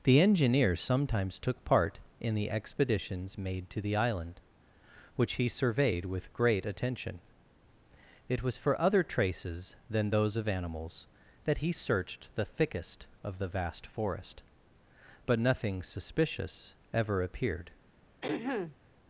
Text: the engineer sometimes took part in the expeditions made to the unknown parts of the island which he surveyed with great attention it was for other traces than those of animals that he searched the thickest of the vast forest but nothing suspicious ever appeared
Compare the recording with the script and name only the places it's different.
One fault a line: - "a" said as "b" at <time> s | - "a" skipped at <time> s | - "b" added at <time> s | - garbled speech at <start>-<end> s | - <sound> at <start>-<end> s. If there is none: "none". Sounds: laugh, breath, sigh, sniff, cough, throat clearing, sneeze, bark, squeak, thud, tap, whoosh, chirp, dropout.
- "unknown parts of the" skipped at 4.0 s
- throat clearing at 18.2-18.8 s